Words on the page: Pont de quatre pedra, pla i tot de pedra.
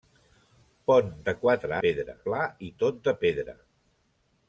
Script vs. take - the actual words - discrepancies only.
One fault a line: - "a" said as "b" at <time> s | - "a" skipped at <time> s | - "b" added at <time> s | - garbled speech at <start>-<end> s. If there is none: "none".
none